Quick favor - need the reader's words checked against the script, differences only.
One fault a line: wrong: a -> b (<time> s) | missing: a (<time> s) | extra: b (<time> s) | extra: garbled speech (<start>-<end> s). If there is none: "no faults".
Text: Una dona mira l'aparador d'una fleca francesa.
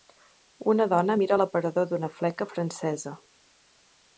no faults